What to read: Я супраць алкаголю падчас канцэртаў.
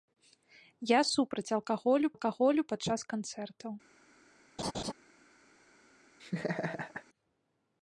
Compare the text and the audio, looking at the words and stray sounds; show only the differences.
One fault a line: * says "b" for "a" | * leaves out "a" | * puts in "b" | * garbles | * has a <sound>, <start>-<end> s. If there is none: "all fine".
* puts in "алкаголю"
* has a laugh, 4.6-4.9 s
* has a laugh, 6.2-7.0 s